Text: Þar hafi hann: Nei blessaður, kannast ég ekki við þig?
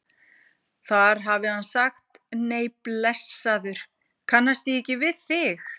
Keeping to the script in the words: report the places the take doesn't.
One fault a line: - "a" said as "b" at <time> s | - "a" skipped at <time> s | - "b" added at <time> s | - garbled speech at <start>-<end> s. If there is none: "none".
- "sagt" added at 1.7 s